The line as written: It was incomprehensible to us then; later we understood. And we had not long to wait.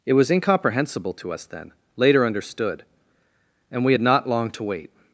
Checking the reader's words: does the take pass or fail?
fail